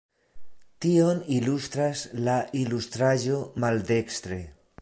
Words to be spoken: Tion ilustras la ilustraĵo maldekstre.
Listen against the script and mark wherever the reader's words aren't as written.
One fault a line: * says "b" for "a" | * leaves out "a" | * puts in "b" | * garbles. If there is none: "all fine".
all fine